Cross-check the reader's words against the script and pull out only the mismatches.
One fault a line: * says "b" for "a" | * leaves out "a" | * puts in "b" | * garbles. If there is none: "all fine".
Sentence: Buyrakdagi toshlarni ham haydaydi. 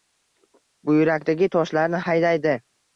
* leaves out "ham"